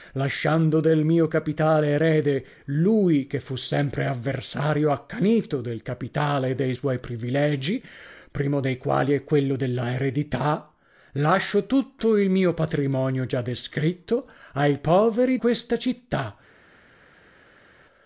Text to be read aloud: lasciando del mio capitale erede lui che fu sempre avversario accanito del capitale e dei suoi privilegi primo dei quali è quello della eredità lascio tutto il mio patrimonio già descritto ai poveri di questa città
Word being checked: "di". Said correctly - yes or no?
no